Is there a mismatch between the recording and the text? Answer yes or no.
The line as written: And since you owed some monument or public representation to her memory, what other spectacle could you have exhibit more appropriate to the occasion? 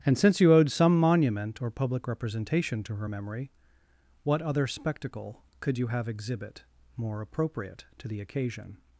no